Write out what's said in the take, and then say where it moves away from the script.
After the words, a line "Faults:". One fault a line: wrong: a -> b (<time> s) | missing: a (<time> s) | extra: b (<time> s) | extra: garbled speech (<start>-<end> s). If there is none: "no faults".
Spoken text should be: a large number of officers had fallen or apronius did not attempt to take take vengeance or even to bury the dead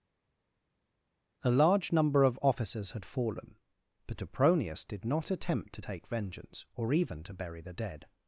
a large number of officers had fallen but apronius did not attempt to take vengeance or even to bury the dead
Faults:
wrong: or -> but (4.1 s)
missing: take (6.1 s)